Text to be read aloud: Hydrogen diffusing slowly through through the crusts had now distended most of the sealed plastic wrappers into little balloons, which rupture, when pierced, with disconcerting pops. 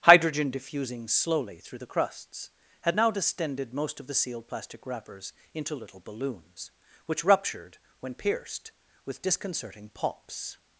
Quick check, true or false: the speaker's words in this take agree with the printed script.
false